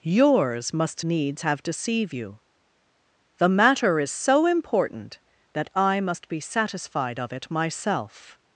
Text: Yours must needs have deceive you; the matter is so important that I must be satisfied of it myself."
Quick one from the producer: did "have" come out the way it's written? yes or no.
yes